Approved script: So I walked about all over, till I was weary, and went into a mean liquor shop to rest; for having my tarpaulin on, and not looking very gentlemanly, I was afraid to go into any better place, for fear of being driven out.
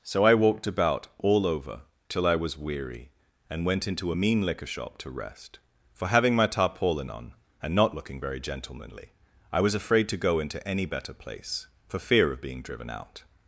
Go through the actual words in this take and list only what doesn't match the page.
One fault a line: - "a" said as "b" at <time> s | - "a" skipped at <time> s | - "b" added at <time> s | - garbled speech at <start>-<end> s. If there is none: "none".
none